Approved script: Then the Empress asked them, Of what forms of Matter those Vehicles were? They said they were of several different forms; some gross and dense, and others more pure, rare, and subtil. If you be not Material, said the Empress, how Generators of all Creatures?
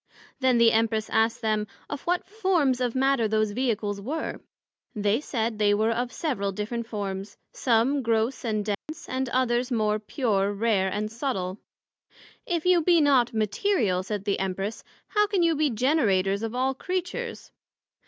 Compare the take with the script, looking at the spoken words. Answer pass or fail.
fail